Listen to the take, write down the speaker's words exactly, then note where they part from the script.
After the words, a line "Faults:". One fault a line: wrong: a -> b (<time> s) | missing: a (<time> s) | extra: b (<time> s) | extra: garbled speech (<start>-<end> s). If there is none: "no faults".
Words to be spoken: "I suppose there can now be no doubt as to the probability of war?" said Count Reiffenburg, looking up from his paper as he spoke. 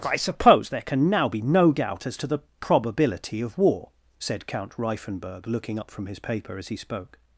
"I suppose there can now be no doubt as to the probability of war?" said Count Reiffenburg, looking up from his paper as he spoke.
Faults:
no faults